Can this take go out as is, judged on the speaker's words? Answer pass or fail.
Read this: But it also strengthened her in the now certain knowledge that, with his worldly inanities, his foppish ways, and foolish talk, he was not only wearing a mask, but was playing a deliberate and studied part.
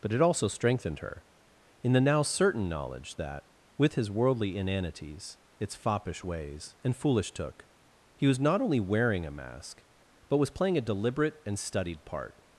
fail